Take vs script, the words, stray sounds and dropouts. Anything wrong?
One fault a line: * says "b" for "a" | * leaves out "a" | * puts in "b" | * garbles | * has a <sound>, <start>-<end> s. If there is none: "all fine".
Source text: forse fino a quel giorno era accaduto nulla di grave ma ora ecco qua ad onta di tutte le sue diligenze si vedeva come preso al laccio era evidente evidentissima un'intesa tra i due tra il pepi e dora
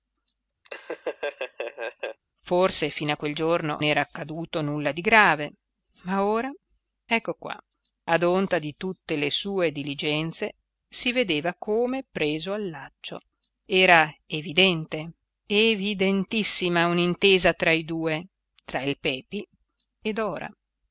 * has a laugh, 0.6-2.2 s